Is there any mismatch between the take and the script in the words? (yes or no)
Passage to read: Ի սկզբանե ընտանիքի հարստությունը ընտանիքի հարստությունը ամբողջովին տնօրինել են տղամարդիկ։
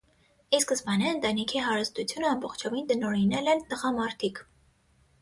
yes